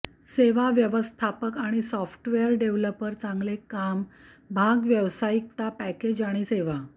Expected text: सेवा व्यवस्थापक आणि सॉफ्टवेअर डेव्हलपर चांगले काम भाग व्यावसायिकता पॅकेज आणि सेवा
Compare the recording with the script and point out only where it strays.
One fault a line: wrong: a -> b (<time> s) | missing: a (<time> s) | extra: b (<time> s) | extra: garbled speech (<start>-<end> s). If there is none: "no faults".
no faults